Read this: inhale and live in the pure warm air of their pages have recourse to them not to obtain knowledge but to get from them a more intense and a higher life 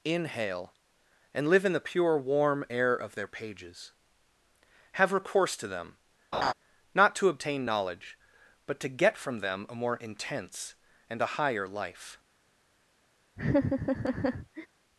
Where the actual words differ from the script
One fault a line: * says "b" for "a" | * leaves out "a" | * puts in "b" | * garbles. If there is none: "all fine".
all fine